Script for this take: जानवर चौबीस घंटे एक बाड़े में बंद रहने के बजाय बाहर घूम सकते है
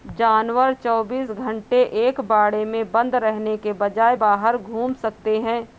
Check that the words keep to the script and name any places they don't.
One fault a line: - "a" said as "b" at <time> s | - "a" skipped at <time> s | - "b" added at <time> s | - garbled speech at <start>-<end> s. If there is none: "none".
none